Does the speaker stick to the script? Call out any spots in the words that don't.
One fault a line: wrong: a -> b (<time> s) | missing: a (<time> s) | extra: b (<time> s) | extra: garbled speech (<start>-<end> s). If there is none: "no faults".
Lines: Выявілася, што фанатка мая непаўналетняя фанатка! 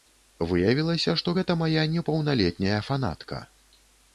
wrong: фанатка -> гэта (1.4 s)